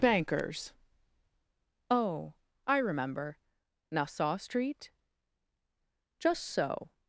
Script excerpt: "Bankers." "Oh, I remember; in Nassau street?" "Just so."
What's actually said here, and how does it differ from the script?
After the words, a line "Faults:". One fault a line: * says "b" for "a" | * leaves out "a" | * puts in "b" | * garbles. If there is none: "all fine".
"Bankers." "Oh, I remember; Nassau street?" "Just so."
Faults:
* leaves out "in"